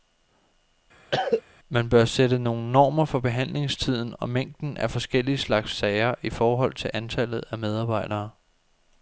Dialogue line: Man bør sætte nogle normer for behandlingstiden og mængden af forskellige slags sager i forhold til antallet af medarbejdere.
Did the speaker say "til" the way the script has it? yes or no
yes